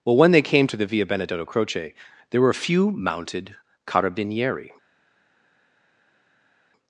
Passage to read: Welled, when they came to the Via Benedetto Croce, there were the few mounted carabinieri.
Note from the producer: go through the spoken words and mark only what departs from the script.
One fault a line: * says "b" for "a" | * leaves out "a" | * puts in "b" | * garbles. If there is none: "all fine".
* says "Well" for "Welled"
* says "a" for "the"